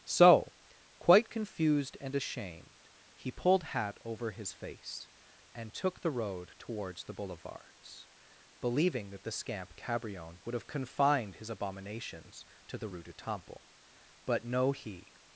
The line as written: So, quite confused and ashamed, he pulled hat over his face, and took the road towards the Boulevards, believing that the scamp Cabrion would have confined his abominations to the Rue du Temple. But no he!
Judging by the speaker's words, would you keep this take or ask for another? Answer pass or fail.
pass